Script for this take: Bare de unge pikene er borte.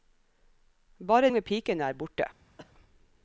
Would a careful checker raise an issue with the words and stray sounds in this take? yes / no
yes